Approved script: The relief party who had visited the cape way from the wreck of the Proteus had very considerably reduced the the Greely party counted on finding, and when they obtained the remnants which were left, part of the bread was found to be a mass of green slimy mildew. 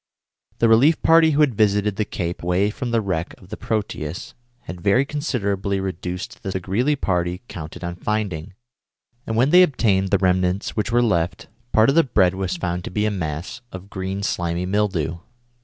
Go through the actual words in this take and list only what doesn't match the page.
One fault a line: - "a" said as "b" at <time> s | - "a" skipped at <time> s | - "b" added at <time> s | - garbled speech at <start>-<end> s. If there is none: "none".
none